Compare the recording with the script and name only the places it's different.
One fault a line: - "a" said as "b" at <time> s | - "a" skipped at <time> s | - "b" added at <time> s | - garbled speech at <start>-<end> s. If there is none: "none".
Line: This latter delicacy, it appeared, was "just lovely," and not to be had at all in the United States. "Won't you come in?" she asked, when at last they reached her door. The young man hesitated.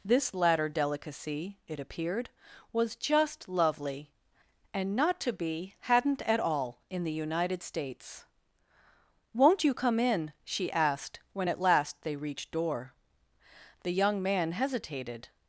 - "had" said as "hadn't" at 5.8 s
- "her" skipped at 12.5 s